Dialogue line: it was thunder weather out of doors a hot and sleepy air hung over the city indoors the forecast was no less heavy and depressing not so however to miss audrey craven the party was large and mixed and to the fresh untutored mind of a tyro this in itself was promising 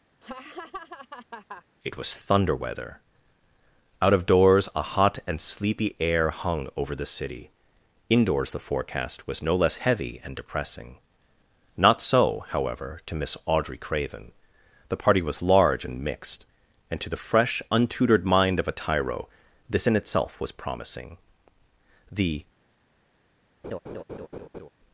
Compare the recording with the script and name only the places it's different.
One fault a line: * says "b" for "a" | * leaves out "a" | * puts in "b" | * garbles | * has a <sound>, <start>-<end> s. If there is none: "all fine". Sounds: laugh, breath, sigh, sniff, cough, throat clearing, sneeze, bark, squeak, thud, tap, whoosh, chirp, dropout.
* has a laugh, 0.2-1.6 s
* puts in "the"
* has a laugh, 23.6-24.7 s